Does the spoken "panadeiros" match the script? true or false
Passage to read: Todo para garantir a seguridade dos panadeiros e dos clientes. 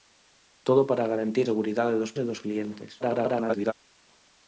false